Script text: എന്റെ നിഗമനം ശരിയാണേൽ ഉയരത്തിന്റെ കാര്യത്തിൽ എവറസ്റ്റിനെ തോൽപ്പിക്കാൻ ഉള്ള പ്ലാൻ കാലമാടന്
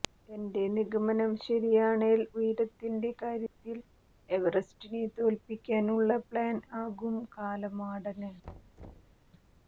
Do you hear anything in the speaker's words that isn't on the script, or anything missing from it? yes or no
yes